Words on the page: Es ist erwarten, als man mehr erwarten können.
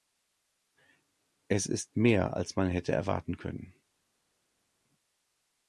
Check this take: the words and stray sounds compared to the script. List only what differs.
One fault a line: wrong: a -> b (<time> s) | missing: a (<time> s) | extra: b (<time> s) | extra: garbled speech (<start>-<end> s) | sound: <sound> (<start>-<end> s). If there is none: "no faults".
wrong: erwarten -> mehr (1.9 s)
wrong: mehr -> hätte (2.7 s)